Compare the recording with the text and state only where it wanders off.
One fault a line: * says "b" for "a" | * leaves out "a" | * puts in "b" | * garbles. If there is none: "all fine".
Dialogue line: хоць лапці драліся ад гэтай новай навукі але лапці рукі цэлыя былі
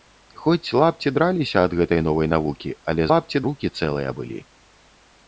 all fine